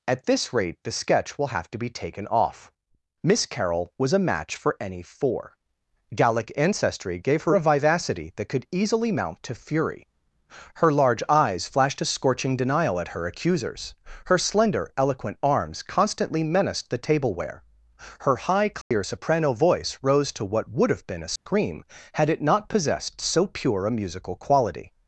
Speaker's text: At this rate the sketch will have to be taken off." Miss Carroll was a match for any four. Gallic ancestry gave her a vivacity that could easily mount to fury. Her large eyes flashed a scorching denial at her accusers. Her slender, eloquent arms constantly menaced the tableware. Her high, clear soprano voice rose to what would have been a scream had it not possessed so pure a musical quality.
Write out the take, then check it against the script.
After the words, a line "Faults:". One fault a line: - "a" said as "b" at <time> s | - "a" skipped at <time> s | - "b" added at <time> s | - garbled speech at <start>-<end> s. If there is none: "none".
At this rate the sketch will have to be taken off." Miss Carroll was a match for any four. Gallic ancestry gave her a vivacity that could easily mount to fury. Her large eyes flashed a scorching denial at her accusers. Her slender, eloquent arms constantly menaced the tableware. Her high, clear soprano voice rose to what would have been a scream had it not possessed so pure a musical quality.
Faults:
none